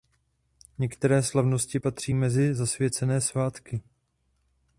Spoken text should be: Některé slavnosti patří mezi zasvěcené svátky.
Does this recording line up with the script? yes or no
yes